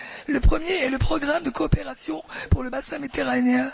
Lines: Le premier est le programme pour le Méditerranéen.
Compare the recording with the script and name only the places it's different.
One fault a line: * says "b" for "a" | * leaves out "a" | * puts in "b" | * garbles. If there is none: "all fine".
* puts in "de coopération"
* puts in "Bassin"